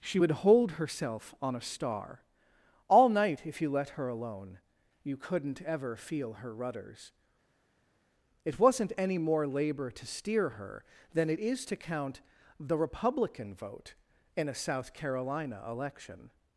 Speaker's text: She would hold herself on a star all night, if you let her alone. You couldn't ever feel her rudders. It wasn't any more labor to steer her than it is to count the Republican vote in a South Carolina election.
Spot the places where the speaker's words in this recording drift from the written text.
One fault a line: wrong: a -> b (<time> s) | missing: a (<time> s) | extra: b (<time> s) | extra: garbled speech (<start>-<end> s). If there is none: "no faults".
no faults